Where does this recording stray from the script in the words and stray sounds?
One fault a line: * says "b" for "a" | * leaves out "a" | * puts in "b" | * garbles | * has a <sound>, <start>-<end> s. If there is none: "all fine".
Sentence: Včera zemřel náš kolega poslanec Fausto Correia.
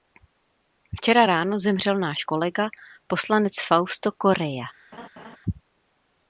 * puts in "ráno"
* has a laugh, 4.9-5.4 s